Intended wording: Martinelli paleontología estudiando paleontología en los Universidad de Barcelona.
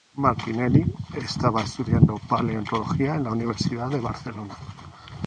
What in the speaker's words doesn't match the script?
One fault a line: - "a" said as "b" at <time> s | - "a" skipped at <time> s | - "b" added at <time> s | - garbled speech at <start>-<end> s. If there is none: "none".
- "paleontología" said as "estaba" at 1.2 s
- "los" said as "la" at 3.2 s